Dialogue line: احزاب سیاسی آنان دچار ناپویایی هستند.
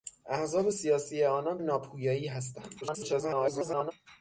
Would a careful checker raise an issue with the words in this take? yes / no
yes